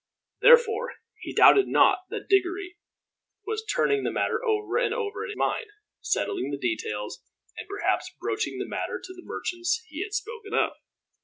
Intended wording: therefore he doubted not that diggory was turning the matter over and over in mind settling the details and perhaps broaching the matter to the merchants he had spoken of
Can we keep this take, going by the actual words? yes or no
yes